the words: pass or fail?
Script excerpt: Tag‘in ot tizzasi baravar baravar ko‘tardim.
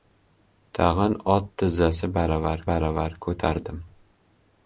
pass